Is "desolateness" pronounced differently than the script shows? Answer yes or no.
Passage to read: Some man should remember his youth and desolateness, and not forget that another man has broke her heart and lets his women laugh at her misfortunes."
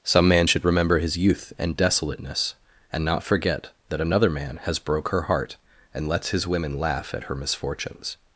no